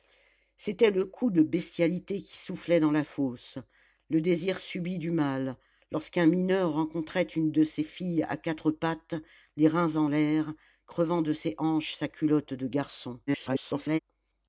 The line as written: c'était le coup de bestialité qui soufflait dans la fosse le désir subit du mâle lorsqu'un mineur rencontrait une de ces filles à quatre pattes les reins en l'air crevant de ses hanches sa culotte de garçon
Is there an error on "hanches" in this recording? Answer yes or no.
no